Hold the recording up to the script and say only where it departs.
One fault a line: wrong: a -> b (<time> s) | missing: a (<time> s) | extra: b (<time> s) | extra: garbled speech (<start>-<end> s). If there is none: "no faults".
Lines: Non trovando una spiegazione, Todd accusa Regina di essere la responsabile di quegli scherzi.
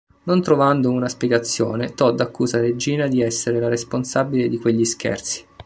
no faults